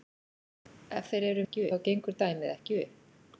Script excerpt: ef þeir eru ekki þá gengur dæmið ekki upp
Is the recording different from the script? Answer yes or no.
no